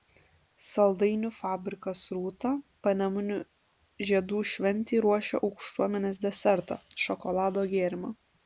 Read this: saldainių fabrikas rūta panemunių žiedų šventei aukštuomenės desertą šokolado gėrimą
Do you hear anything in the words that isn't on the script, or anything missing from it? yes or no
yes